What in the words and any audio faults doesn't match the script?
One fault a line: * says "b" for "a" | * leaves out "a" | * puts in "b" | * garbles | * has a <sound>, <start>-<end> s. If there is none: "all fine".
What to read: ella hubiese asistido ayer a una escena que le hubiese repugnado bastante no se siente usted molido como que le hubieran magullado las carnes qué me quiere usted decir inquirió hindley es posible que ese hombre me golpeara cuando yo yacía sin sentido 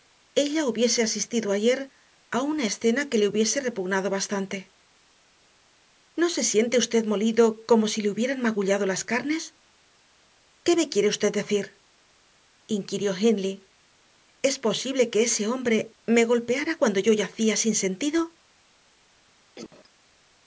* says "si" for "que"
* has a cough, 19.5-19.9 s